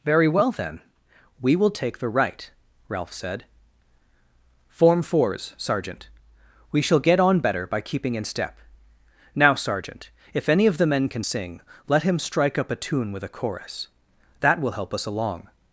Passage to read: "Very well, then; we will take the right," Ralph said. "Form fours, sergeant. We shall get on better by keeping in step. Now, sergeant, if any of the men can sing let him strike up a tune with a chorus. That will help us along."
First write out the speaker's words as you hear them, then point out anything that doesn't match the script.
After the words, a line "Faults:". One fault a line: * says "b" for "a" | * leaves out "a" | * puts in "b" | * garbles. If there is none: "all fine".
"Very well, then; we will take the right," Ralph said. "Form fours, sergeant. We shall get on better by keeping in step. Now, sergeant, if any of the men can sing let him strike up a tune with a chorus. That will help us along."
Faults:
all fine